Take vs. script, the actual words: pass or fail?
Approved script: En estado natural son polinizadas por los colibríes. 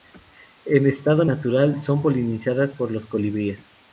pass